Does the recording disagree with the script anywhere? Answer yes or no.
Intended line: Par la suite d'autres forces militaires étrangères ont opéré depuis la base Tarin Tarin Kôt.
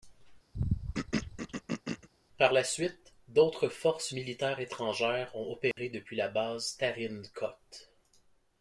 yes